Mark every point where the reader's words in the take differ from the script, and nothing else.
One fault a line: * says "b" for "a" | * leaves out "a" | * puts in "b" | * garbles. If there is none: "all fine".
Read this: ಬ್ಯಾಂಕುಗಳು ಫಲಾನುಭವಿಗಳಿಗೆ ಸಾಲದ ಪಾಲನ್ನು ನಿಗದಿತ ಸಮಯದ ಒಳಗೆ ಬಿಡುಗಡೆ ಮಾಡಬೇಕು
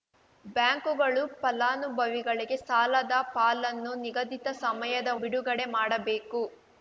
* leaves out "ಒಳಗೆ"